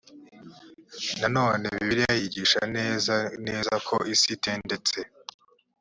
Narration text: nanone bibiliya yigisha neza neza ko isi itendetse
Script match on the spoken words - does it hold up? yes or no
yes